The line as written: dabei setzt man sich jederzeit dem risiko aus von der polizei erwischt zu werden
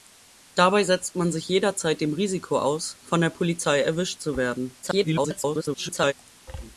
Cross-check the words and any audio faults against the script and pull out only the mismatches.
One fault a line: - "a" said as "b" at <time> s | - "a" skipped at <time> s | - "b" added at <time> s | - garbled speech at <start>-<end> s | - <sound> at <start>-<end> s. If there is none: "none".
- garbled speech at 4.8-6.1 s